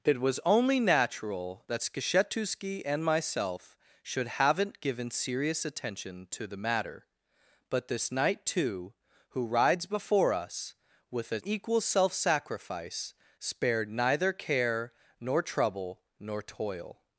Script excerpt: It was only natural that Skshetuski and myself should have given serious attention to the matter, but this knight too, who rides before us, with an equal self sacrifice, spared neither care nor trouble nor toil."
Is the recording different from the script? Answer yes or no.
yes